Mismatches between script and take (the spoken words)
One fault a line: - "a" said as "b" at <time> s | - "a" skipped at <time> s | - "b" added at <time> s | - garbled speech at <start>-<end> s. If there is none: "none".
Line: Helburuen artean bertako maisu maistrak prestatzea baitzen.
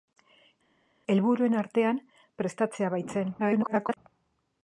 - "bertako maisu maistrak" skipped at 2.0 s
- garbled speech at 3.4-4.0 s